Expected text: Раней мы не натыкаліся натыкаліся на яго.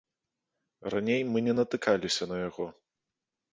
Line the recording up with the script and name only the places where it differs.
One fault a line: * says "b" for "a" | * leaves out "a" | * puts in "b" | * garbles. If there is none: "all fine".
* leaves out "натыкаліся"